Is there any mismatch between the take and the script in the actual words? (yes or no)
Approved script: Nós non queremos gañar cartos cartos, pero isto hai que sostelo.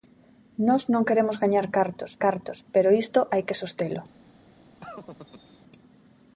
no